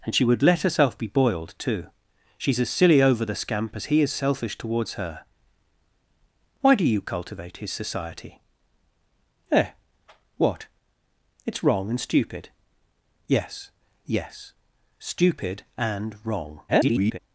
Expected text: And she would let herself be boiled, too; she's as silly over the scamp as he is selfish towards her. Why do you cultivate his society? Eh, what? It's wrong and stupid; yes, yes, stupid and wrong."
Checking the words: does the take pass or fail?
fail